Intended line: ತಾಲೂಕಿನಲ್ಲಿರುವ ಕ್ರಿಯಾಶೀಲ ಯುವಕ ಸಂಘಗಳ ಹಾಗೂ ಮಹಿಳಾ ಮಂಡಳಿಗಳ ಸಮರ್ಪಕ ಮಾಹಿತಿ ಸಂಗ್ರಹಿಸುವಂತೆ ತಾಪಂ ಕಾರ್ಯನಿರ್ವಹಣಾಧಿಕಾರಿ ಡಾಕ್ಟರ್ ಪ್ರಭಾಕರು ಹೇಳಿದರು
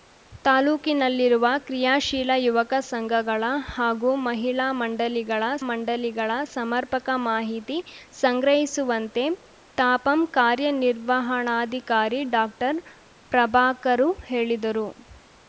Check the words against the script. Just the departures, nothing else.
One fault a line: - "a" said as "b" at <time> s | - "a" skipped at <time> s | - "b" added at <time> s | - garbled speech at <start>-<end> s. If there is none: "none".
- "ಮಂಡಳಿಗಳ" added at 5.7 s